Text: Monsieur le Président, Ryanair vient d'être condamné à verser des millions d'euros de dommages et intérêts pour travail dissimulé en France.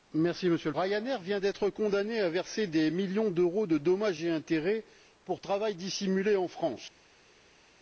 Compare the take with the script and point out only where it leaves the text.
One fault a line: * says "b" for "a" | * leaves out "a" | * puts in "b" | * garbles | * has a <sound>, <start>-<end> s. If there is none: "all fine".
* leaves out "Président"